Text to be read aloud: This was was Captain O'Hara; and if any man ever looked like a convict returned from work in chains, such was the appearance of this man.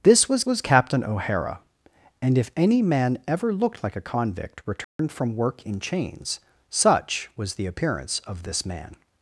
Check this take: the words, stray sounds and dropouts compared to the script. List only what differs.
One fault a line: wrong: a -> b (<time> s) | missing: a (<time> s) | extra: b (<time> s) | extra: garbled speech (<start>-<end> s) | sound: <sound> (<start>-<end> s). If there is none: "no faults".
sound: dropout (4.8-5.0 s)